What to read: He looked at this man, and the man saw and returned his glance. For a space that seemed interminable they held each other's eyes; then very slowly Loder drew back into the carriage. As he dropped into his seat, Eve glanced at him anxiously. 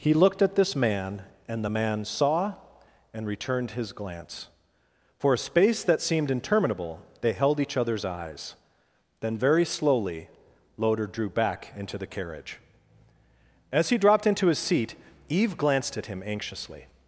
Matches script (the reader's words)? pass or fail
pass